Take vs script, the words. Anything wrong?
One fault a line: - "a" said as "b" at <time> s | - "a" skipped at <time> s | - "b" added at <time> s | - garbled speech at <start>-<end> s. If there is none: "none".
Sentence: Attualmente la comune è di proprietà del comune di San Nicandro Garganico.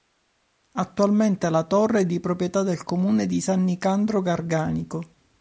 - "comune" said as "torre" at 1.6 s